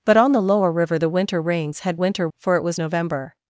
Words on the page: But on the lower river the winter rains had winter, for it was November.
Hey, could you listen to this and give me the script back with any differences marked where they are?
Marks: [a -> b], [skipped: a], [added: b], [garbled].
But on the lower river the winter rains had winter, for it was November.